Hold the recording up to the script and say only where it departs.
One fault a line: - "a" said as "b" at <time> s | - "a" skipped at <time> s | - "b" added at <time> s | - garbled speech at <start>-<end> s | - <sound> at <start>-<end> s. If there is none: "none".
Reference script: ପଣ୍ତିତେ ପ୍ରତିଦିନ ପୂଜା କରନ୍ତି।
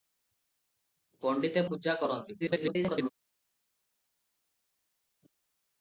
- "ପ୍ରତିଦିନ" skipped at 1.6 s
- garbled speech at 2.4-3.1 s